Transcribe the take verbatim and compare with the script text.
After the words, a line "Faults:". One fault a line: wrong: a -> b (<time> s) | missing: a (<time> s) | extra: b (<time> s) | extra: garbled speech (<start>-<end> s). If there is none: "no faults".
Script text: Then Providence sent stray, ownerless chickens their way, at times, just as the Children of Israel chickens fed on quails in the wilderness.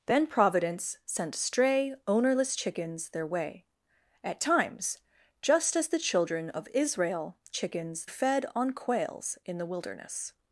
Then Providence sent stray, ownerless chickens their way, at times, just as the Children of Israel chickens fed on quails in the wilderness.
Faults:
no faults